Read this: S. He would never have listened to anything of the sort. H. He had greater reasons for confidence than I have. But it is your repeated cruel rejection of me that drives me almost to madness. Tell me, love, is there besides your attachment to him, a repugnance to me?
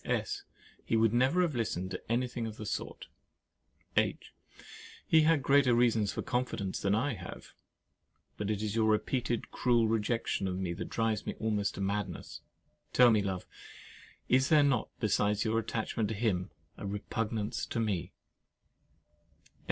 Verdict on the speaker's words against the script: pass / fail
fail